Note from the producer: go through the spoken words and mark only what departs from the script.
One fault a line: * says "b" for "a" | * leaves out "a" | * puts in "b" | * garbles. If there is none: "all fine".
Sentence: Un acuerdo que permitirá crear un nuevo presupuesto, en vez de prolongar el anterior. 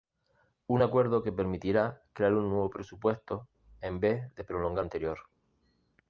* leaves out "el"